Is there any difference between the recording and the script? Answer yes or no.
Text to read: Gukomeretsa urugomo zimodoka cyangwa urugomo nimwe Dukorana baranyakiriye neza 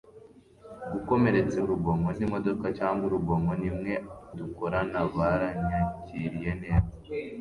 no